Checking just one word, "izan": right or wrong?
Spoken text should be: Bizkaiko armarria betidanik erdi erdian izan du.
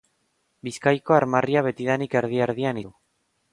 wrong